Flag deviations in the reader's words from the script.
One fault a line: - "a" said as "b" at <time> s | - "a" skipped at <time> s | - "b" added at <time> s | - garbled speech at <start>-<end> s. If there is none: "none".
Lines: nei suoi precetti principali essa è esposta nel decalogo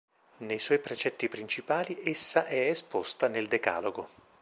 none